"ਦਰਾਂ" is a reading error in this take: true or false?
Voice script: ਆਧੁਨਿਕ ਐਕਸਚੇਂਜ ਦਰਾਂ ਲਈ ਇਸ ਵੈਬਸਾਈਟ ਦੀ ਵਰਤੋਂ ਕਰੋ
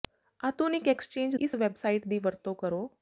true